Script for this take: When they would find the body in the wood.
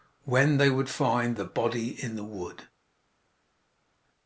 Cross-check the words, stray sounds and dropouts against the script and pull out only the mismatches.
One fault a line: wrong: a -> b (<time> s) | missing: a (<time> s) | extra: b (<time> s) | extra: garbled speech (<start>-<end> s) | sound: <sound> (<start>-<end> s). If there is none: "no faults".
no faults